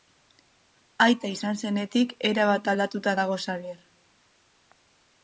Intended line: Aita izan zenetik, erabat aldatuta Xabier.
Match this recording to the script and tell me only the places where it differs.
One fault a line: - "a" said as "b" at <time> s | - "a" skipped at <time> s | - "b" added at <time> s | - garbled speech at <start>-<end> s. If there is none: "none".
- "dago" added at 3.2 s